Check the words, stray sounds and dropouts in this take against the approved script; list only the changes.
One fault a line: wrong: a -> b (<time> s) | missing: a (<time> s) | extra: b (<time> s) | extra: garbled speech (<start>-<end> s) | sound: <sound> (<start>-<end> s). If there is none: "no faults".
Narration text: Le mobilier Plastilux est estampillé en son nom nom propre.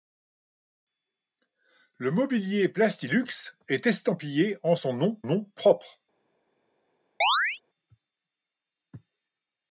sound: chirp (7.2-7.6 s)